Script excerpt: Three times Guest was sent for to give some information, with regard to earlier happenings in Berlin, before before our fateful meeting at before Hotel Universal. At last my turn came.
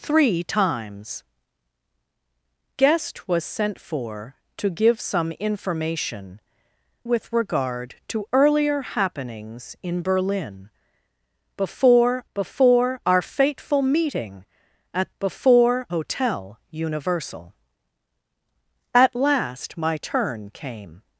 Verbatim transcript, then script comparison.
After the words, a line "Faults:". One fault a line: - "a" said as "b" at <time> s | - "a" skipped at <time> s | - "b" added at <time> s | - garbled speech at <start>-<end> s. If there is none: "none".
Three times Guest was sent for to give some information, with regard to earlier happenings in Berlin, before before our fateful meeting at before Hotel Universal. At last my turn came.
Faults:
none